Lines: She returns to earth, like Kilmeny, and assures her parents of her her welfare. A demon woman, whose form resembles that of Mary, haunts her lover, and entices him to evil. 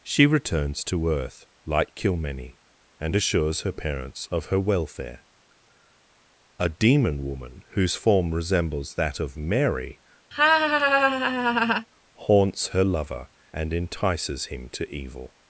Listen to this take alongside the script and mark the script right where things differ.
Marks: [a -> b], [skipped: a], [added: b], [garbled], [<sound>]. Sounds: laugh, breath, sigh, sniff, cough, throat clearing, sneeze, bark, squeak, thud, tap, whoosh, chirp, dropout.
She returns to earth, like Kilmeny, and assures her parents of her [skipped: her] welfare. A demon woman, whose form resembles that of Mary, [laugh] haunts her lover, and entices him to evil.